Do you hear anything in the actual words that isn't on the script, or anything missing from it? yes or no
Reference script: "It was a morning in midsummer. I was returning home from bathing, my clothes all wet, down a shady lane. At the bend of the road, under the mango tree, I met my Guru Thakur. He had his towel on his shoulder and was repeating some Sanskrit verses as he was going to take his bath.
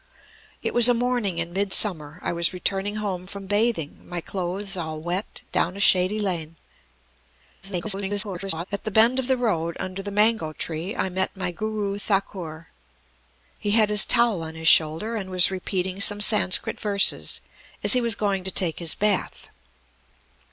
yes